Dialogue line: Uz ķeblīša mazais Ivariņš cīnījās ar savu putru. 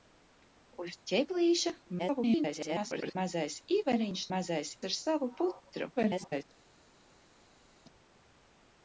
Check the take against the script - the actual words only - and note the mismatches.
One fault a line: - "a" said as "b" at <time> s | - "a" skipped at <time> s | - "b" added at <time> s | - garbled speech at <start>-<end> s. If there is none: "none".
- garbled speech at 2.0-3.2 s
- "cīnījās" said as "mazais" at 4.3 s
- garbled speech at 5.9-6.4 s